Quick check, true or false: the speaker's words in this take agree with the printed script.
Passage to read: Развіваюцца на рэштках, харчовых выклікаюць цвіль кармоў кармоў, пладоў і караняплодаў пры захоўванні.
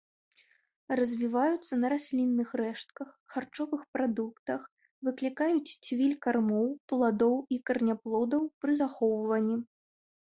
false